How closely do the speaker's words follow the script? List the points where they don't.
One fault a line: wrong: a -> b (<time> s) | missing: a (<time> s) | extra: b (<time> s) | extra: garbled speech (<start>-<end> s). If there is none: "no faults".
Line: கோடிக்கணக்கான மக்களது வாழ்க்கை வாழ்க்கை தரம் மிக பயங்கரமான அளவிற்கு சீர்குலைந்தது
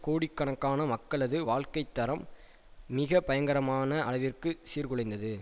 missing: வாழ்க்கை (1.8 s)